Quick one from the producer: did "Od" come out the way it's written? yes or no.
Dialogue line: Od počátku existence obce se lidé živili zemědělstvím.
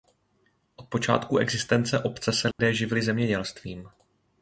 yes